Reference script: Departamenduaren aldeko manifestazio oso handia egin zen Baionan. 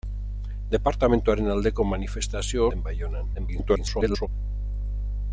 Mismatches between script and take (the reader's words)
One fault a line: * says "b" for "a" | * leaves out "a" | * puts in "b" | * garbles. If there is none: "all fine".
* leaves out "oso handia egin"
* garbles